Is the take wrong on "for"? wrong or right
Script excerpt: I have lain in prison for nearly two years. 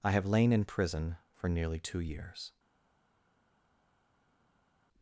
right